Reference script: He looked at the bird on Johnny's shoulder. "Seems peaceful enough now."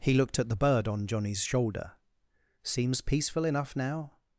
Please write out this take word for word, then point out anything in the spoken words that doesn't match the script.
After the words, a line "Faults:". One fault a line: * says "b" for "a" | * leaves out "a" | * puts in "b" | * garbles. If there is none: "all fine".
He looked at the bird on Johnny's shoulder. "Seems peaceful enough now."
Faults:
all fine